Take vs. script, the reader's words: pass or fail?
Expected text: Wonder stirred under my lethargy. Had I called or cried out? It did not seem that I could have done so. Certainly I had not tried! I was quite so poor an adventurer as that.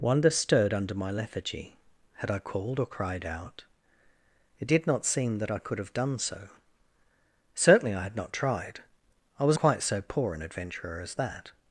pass